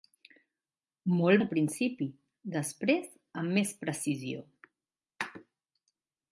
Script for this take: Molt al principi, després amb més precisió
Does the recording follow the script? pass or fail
pass